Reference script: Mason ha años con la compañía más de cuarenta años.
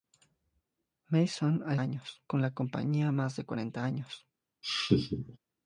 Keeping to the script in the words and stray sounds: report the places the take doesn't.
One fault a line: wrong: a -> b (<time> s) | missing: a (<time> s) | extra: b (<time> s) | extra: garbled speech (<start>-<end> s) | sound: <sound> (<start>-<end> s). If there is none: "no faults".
sound: laugh (4.6-5.4 s)